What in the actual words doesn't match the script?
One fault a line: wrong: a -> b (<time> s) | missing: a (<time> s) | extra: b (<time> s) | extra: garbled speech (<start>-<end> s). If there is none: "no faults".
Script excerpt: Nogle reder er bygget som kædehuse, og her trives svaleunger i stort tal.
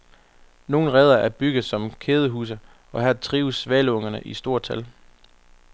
no faults